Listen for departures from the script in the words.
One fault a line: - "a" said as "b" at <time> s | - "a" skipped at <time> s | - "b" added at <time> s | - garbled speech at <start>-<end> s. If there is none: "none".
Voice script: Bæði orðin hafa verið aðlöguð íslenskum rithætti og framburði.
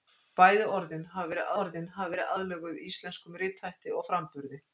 - "orðin hafa verið" added at 1.6 s